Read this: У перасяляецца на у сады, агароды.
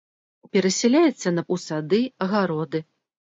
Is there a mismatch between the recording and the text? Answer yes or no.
no